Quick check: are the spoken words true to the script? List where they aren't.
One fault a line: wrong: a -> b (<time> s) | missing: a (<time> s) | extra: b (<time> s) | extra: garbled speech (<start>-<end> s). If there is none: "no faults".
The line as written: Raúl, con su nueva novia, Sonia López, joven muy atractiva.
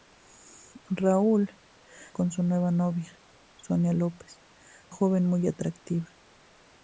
no faults